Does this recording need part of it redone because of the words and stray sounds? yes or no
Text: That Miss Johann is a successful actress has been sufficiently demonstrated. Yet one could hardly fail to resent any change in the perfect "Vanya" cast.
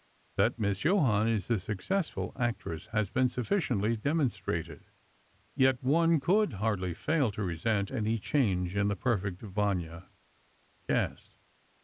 no